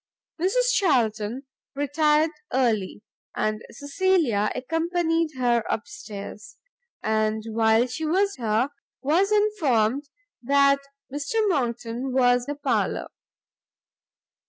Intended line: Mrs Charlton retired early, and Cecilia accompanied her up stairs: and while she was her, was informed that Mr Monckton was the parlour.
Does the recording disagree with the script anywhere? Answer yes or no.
no